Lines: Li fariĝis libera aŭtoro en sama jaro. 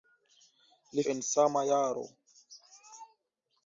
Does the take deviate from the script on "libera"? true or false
true